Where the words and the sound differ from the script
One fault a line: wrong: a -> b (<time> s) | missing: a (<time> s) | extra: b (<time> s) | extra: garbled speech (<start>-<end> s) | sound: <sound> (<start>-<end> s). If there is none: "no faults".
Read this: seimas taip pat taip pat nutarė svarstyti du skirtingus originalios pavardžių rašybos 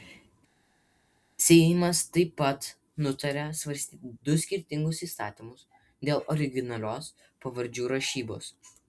missing: taip pat (2.7 s)
extra: įstatymus dėl (5.1 s)